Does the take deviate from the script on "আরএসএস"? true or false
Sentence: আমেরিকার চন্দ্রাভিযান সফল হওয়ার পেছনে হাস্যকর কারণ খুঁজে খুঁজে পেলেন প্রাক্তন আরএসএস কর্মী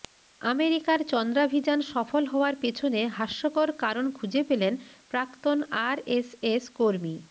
false